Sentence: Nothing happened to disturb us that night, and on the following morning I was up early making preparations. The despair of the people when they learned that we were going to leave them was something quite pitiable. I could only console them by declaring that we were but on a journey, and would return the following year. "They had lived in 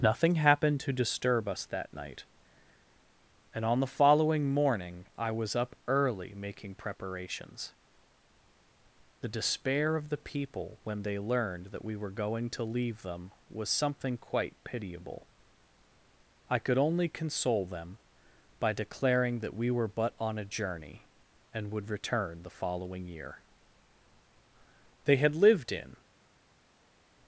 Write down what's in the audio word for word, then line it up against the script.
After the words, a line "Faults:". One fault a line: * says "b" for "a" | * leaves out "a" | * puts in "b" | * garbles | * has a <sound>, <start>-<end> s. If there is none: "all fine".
Nothing happened to disturb us that night, and on the following morning I was up early making preparations. The despair of the people when they learned that we were going to leave them was something quite pitiable. I could only console them by declaring that we were but on a journey, and would return the following year. "They had lived in
Faults:
all fine